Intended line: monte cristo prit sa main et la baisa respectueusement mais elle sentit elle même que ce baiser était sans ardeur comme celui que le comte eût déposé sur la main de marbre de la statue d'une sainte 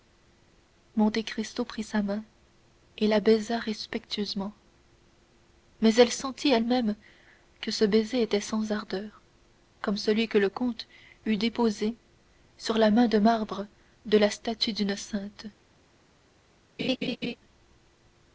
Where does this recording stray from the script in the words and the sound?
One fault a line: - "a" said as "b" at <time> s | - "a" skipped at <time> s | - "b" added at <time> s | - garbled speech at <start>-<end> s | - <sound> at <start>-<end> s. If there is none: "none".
- laugh at 16.8-17.4 s